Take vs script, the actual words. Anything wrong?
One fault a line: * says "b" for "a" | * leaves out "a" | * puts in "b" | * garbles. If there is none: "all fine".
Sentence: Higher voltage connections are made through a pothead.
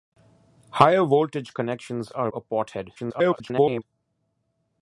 * leaves out "made through"
* garbles